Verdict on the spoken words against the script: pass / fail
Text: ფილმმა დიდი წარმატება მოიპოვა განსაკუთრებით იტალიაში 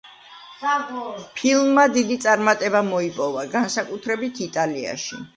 pass